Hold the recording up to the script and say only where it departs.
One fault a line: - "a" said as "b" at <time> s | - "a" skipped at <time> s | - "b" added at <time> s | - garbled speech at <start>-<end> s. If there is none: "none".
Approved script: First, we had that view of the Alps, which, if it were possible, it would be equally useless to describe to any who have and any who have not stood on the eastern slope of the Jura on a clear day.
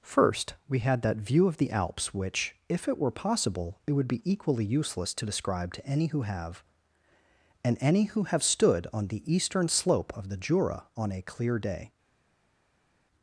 - "not" skipped at 8.4 s